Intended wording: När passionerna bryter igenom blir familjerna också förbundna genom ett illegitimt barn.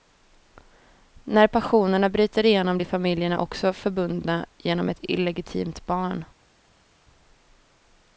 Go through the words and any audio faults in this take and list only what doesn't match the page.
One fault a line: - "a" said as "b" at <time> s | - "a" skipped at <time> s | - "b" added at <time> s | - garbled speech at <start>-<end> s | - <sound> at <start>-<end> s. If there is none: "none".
none